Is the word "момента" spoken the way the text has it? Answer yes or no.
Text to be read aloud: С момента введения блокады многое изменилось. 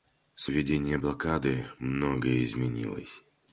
no